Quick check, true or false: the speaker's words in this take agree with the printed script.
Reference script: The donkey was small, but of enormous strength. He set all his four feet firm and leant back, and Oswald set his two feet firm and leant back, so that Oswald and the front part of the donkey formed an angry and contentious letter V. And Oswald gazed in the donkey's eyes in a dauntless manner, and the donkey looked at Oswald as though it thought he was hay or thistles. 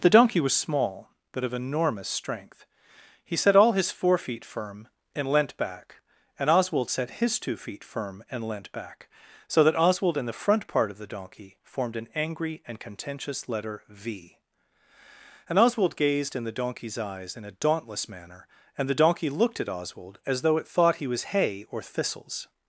true